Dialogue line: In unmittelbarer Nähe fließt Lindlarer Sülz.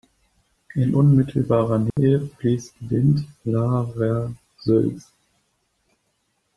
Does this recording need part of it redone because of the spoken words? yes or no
no